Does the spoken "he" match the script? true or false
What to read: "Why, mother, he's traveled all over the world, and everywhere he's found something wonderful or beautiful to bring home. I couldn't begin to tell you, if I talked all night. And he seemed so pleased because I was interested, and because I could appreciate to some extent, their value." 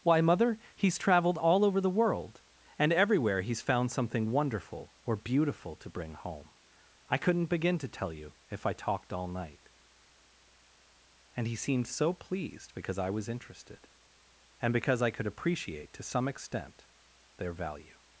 true